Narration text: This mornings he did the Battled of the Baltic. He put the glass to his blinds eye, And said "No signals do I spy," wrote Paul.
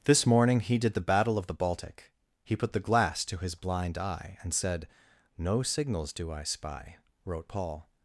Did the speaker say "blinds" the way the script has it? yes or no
no